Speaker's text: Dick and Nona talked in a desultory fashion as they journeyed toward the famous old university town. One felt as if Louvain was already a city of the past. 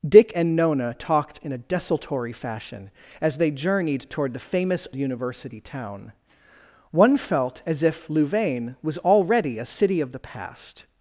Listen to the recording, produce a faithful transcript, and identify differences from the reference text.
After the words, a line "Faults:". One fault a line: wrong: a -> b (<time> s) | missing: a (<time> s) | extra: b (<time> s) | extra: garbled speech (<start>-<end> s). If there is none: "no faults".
Dick and Nona talked in a desultory fashion as they journeyed toward the famous university town. One felt as if Louvain was already a city of the past.
Faults:
missing: old (4.9 s)